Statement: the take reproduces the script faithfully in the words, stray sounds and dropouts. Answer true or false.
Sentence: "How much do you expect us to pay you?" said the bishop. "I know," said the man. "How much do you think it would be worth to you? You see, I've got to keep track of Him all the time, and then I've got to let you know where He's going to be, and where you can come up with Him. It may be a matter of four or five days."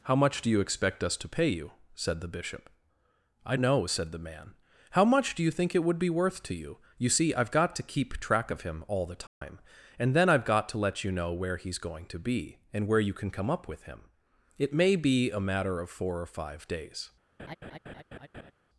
false